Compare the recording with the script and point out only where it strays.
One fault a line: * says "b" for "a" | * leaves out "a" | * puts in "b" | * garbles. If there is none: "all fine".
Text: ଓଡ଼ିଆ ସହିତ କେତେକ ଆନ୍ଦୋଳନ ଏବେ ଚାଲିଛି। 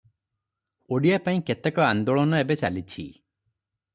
* says "ପାଇଁ" for "ସହିତ"